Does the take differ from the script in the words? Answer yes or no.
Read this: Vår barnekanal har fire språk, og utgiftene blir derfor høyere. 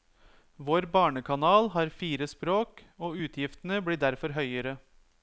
no